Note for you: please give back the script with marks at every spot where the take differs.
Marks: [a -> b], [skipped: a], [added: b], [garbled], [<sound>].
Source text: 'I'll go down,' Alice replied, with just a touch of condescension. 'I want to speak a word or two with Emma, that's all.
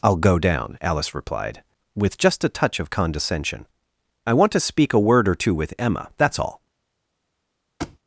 'I'll go down,' Alice replied, with just a touch of condescension. 'I want to speak a word or two with Emma, that's all. [thud]